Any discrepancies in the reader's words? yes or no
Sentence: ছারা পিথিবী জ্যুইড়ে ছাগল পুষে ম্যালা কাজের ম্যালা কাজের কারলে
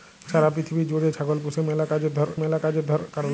no